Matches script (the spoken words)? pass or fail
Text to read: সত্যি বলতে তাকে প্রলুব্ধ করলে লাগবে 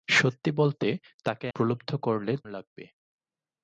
pass